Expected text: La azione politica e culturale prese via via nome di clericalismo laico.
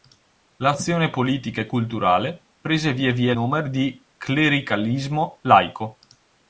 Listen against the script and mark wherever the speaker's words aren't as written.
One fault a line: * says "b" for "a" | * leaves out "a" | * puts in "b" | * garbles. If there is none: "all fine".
all fine